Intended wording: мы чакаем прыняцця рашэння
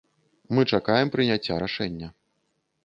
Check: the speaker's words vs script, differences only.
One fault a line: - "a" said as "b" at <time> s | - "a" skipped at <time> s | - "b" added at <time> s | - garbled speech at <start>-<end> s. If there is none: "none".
none